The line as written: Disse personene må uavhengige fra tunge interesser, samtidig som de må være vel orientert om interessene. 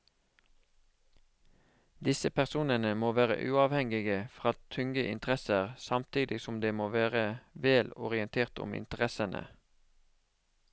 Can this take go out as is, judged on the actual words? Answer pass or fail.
fail